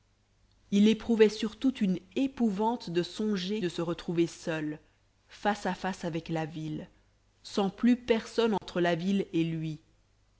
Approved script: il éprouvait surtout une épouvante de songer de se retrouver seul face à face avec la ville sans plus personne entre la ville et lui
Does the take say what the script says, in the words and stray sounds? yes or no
no